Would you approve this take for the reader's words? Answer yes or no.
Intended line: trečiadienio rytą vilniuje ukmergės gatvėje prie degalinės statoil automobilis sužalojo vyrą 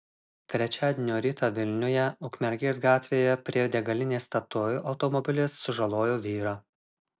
yes